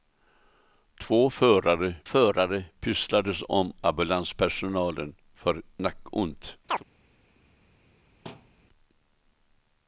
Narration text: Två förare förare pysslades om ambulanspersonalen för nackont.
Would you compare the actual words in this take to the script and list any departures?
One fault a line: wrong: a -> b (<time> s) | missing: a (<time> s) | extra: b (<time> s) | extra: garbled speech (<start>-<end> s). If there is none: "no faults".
no faults